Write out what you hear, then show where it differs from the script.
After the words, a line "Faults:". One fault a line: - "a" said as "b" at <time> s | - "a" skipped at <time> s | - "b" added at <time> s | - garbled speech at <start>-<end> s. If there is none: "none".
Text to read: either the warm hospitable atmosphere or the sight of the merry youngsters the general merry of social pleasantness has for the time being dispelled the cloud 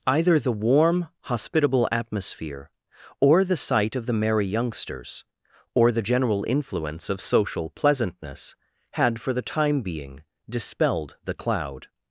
either the warm hospitable atmosphere or the sight of the merry youngsters or the general influence of social pleasantness had for the time being dispelled the cloud
Faults:
- "or" added at 5.8 s
- "merry" said as "influence" at 6.5 s
- "has" said as "had" at 8.9 s